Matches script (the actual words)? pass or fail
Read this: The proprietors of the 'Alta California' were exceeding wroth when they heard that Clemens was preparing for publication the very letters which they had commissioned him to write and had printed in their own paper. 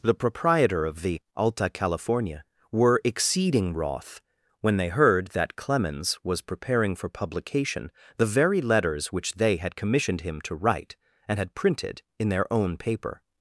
fail